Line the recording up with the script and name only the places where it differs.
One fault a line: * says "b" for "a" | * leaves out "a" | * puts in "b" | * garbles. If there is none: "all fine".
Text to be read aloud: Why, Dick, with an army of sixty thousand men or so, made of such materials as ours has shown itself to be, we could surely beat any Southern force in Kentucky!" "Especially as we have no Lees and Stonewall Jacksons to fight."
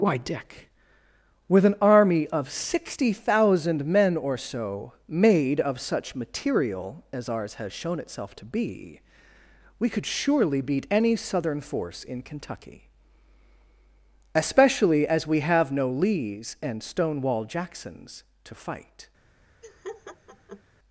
* says "material" for "materials"